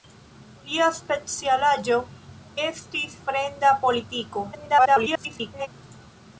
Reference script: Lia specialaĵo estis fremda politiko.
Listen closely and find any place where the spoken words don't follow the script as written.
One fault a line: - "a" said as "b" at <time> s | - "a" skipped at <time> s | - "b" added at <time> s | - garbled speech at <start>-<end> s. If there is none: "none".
- garbled speech at 4.5-5.7 s